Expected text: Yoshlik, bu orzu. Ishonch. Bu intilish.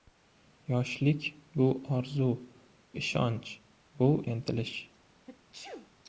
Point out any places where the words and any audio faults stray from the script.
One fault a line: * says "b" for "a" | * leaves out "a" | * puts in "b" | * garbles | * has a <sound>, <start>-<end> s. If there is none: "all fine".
* has a sneeze, 5.3-5.9 s